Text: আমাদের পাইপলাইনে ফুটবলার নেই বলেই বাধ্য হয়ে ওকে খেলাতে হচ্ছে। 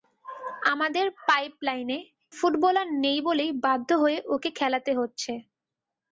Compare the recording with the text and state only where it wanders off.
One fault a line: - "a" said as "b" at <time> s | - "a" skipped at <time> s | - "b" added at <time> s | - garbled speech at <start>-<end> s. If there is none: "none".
none